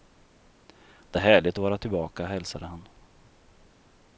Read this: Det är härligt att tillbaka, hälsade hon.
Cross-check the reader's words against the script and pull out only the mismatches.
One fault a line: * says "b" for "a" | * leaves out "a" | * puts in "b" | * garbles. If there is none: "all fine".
* puts in "vara"
* says "han" for "hon"